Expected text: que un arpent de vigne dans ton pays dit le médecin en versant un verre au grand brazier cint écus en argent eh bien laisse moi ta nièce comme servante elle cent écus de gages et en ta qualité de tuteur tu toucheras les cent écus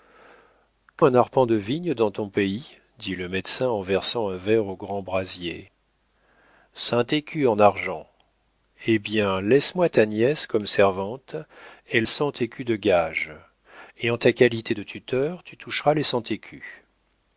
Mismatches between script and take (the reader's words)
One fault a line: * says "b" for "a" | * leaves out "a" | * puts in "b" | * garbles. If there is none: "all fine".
all fine